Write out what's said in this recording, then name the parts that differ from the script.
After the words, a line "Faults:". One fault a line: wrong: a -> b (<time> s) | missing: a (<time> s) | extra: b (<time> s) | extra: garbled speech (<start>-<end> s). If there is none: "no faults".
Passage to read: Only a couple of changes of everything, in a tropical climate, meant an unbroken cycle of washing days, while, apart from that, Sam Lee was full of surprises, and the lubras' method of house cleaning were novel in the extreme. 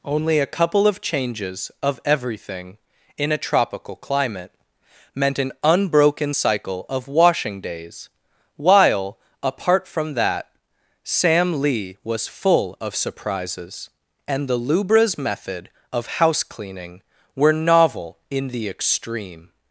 Only a couple of changes of everything, in a tropical climate, meant an unbroken cycle of washing days, while, apart from that, Sam Lee was full of surprises, and the lubras' method of house cleaning were novel in the extreme.
Faults:
no faults